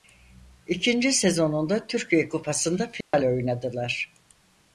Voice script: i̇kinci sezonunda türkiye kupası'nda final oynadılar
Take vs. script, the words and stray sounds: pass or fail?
fail